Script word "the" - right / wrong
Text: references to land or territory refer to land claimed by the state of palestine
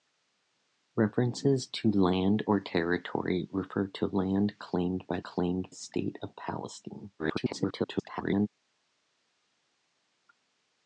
wrong